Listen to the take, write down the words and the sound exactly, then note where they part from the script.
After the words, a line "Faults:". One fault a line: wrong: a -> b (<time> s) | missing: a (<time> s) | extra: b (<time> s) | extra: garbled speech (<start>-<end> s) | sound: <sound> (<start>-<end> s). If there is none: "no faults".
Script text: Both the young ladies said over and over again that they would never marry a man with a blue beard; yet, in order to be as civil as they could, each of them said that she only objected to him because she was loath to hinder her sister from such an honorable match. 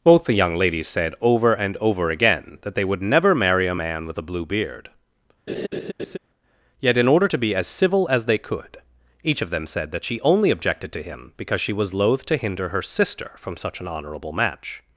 Both the young ladies said over and over again that they would never marry a man with a blue beard; yet, in order to be as civil as they could, each of them said that she only objected to him because she was loath to hinder her sister from such an honorable match.
Faults:
sound: laugh (5.5-6.2 s)